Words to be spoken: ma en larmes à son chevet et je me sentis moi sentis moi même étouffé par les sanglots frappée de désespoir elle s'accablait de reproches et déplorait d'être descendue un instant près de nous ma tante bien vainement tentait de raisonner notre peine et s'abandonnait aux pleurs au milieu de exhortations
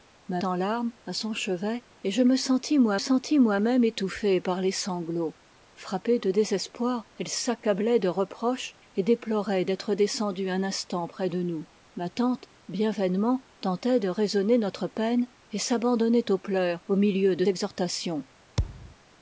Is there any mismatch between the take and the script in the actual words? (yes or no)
no